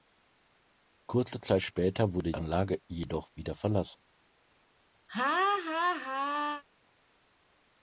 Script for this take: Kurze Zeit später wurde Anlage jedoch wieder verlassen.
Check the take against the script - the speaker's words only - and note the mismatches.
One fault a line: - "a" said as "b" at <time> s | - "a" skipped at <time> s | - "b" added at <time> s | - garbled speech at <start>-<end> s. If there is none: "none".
none